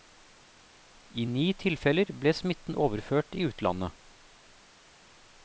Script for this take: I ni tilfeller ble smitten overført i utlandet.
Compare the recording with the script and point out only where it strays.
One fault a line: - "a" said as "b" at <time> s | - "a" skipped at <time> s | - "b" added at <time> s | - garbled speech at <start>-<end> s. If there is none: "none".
none